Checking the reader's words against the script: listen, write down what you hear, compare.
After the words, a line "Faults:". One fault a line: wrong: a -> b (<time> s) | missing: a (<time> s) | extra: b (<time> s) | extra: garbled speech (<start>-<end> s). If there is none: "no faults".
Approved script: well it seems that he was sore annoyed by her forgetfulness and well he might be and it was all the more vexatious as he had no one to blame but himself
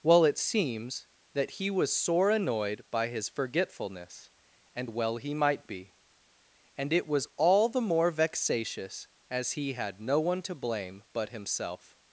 well it seems that he was sore annoyed by his forgetfulness and well he might be and it was all the more vexatious as he had no one to blame but himself
Faults:
wrong: her -> his (3.1 s)